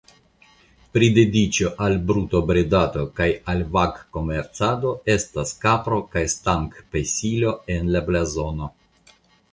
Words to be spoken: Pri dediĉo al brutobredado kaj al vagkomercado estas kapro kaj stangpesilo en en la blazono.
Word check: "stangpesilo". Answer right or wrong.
right